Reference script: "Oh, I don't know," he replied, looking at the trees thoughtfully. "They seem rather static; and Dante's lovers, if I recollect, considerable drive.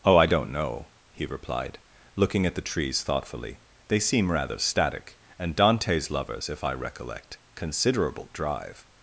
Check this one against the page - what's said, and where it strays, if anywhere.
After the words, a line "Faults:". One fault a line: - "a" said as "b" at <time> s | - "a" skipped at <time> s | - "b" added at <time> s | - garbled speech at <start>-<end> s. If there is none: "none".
"Oh, I don't know," he replied, looking at the trees thoughtfully. "They seem rather static; and Dante's lovers, if I recollect, considerable drive.
Faults:
none